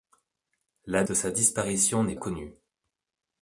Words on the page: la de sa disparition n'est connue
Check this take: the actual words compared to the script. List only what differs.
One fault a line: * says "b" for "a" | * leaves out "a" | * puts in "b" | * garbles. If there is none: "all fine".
all fine